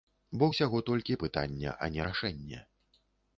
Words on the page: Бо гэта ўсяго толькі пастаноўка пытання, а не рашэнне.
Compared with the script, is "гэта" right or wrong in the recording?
wrong